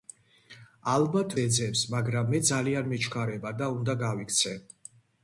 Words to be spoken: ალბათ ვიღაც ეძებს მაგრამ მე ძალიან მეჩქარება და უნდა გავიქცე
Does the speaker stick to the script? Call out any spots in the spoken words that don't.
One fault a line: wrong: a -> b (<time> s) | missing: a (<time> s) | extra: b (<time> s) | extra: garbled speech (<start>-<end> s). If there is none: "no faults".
missing: ვიღაც (1.4 s)